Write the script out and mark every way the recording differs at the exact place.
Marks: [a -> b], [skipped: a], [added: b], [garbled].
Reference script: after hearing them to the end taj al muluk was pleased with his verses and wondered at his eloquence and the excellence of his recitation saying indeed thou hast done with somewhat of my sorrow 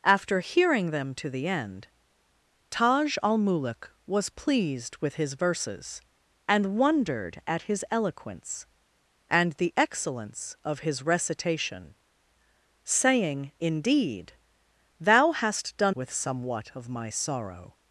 after hearing them to the end taj al muluk was pleased with his verses and wondered at his eloquence and the excellence of his recitation saying indeed thou hast done with somewhat of my sorrow